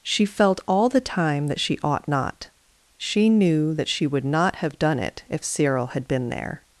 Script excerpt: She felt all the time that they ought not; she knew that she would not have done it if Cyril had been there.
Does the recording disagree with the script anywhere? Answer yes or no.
yes